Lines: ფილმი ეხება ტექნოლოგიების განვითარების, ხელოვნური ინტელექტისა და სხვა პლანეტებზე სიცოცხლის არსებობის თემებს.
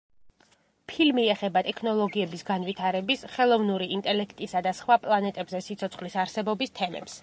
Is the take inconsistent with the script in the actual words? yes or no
no